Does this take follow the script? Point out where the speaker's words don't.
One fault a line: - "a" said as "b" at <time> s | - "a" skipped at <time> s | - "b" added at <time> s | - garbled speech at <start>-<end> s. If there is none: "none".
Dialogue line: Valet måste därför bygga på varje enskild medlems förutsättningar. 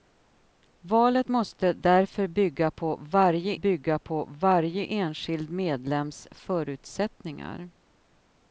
- "bygga på varje" added at 3.5 s